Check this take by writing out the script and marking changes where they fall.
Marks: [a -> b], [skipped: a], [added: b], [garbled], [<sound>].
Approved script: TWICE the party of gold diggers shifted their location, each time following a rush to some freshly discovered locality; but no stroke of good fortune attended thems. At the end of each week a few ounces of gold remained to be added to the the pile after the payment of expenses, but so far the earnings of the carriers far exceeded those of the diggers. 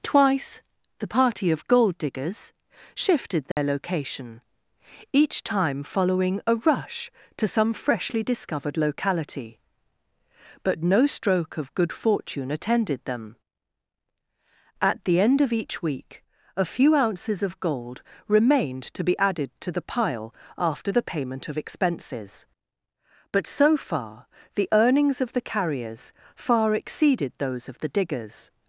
TWICE the party of gold diggers shifted their [dropout] location, each time following a rush to some freshly discovered locality; but no stroke of good fortune attended [thems. -> them] At the end of each week a few ounces of gold remained to be added to the [skipped: the] pile after the payment of expenses, but so far the earnings of the carriers far exceeded those of the diggers.